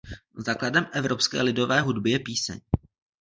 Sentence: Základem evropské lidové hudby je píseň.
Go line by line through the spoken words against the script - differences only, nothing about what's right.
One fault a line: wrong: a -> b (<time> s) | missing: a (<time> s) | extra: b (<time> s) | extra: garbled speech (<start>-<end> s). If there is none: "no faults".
no faults